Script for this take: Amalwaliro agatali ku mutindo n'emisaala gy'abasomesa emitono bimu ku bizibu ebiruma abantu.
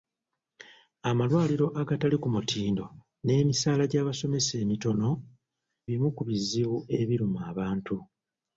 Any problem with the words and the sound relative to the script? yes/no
no